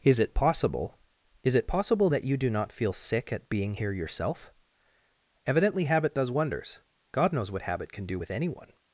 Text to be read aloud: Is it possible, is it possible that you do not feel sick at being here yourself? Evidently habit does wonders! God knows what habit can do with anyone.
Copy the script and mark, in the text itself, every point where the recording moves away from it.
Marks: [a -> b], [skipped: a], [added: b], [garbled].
Is it possible, is it possible that you do not feel sick at being here yourself? Evidently habit does wonders! God knows what habit can do with anyone.